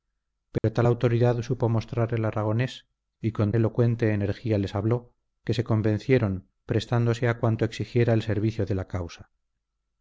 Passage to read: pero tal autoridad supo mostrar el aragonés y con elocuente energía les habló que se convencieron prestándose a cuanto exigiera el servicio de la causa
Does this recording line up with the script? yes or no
yes